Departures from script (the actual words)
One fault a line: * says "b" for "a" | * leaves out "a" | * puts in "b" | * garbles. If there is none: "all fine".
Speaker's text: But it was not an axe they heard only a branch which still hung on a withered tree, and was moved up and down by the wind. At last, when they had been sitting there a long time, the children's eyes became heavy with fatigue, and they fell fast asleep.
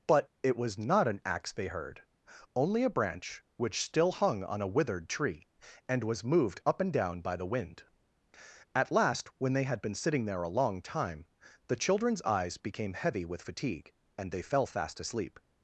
all fine